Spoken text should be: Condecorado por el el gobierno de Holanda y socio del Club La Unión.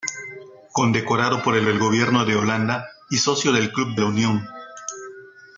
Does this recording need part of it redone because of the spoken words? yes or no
no